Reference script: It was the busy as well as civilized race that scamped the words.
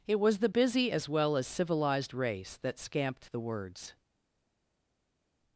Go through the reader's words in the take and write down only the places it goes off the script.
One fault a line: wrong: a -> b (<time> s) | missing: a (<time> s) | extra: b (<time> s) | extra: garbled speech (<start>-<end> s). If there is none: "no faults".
no faults